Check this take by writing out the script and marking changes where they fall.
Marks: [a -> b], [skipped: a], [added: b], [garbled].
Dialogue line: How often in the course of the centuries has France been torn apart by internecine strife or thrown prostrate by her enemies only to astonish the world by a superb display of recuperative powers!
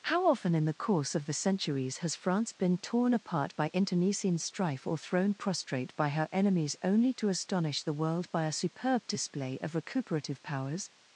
How often in the course of the centuries has France been torn apart by internecine strife or thrown prostrate by her enemies only to astonish the world by a superb display of recuperative powers!